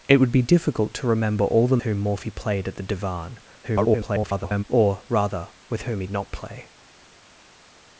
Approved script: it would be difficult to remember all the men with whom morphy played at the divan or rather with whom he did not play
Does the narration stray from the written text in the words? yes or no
yes